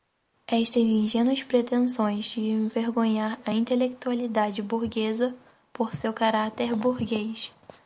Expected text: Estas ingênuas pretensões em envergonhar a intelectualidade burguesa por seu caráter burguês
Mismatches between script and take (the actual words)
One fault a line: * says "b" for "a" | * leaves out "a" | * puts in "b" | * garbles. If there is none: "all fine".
* says "de" for "em"